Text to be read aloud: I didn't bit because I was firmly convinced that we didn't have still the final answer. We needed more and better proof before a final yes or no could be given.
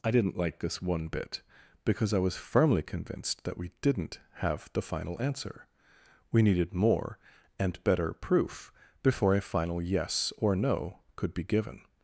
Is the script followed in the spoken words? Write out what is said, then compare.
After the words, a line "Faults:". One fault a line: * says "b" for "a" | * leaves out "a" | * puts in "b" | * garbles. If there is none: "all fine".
I didn't like this one bit because I was firmly convinced that we didn't have the final answer. We needed more and better proof before a final yes or no could be given.
Faults:
* puts in "like this one"
* leaves out "still"